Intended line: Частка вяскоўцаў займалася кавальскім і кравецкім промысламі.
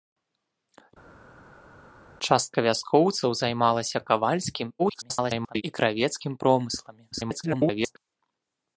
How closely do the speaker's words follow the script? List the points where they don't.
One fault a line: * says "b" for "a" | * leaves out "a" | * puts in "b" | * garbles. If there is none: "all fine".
* garbles
* garbles